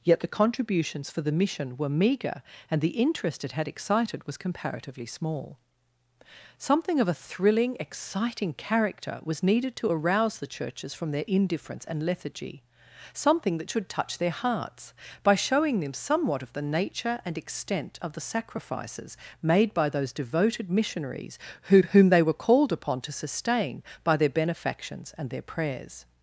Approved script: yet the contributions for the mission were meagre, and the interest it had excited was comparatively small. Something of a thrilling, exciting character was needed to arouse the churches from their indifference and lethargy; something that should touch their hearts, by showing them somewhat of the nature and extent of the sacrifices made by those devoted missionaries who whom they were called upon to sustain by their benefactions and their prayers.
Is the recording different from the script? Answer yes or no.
no